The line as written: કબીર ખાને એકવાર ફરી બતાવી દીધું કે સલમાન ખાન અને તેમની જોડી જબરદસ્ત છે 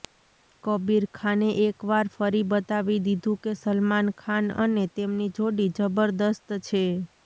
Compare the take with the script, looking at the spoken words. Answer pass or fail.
pass